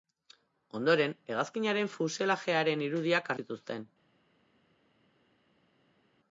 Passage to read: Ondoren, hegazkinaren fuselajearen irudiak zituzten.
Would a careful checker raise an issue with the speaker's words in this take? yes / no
no